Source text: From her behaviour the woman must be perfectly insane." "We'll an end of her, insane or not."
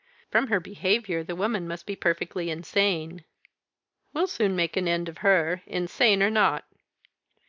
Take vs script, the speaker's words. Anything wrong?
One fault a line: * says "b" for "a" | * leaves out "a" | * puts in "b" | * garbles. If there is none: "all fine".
* puts in "soon make"